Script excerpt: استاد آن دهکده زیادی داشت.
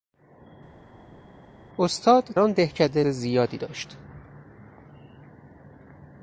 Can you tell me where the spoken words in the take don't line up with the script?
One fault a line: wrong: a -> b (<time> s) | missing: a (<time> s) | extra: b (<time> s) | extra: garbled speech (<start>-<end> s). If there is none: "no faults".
no faults